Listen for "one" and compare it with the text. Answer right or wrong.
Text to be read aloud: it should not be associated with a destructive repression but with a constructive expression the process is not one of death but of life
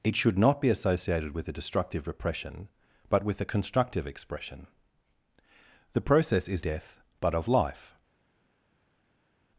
wrong